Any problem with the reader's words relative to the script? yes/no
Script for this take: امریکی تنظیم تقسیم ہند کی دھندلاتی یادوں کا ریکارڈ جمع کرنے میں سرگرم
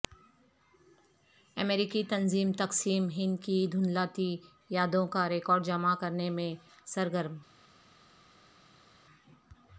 no